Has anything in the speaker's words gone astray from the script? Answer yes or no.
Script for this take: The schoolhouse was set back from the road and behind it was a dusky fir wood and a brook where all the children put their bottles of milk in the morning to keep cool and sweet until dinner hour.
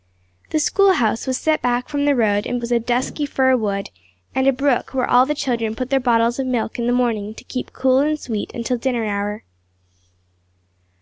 yes